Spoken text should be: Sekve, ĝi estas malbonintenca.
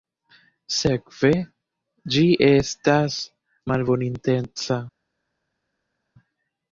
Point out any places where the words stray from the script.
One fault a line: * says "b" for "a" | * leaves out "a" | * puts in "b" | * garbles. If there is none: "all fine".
all fine